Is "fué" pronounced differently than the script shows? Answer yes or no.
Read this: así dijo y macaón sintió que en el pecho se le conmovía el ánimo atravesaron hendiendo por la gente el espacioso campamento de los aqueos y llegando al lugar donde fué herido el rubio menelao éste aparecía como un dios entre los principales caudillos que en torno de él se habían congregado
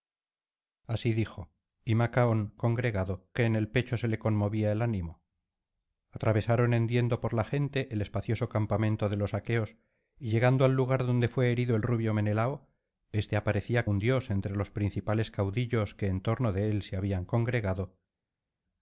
no